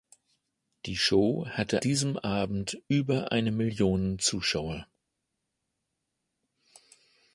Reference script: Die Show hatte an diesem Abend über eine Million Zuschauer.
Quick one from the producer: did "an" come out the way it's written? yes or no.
no